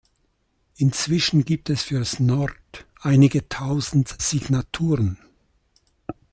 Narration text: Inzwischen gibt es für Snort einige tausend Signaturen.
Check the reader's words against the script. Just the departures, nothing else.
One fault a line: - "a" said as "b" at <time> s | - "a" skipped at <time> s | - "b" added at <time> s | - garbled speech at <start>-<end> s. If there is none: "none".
none